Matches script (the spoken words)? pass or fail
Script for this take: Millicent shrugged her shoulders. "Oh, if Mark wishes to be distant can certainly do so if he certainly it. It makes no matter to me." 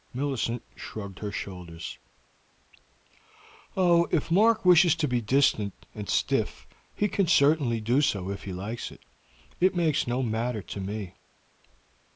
fail